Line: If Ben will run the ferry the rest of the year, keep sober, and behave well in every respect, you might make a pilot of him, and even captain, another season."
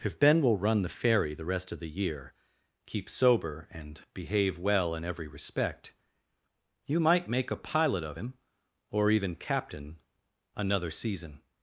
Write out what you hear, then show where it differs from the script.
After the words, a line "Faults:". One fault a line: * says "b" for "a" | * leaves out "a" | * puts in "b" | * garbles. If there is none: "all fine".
If Ben will run the ferry the rest of the year, keep sober, and behave well in every respect, you might make a pilot of him, or even captain, another season."
Faults:
* says "or" for "and"